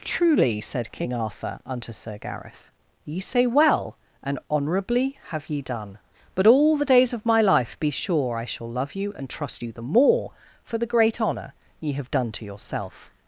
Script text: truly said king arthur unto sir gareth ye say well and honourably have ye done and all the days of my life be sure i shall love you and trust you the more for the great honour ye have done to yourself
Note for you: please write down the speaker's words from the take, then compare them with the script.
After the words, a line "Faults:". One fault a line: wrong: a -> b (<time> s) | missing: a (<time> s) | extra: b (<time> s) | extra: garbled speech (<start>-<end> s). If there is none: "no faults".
truly said king arthur unto sir gareth ye say well and honourably have ye done but all the days of my life be sure i shall love you and trust you the more for the great honour ye have done to yourself
Faults:
wrong: and -> but (6.3 s)